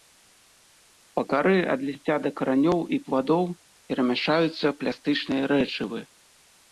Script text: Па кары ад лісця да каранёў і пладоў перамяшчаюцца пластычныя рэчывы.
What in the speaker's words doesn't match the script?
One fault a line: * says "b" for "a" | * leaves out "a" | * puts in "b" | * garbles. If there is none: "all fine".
all fine